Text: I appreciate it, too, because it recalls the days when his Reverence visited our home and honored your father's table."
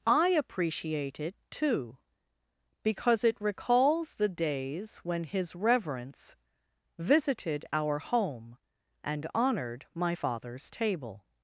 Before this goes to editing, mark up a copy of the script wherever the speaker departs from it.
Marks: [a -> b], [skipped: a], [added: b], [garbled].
I appreciate it, too, because it recalls the days when his Reverence visited our home and honored [your -> my] father's table."